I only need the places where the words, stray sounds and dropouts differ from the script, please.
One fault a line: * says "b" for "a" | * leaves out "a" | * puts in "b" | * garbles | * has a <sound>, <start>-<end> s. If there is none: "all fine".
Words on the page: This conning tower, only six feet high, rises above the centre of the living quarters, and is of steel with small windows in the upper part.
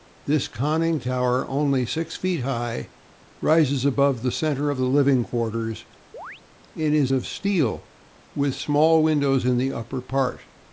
* has a chirp, 6.1-6.4 s